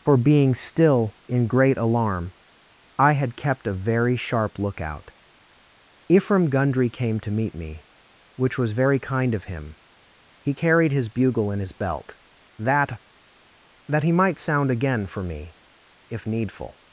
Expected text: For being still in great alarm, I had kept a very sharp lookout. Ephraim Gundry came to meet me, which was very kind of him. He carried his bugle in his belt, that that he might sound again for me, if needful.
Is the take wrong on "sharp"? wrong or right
right